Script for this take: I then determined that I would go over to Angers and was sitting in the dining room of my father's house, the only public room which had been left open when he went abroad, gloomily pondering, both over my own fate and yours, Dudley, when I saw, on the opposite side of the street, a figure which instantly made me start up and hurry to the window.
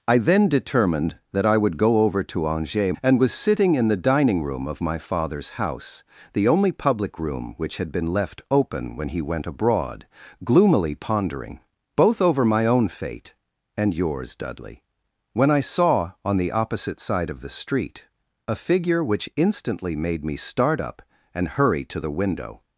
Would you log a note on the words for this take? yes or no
no